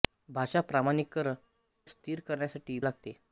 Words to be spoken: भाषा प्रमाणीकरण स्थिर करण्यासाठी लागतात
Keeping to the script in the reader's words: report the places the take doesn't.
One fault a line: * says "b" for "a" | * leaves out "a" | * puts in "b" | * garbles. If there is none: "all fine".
all fine